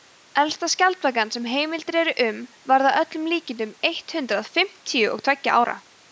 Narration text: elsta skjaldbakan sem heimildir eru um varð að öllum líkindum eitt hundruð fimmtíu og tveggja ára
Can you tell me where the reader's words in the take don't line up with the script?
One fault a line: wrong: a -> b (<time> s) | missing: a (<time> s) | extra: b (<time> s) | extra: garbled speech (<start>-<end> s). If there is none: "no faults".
no faults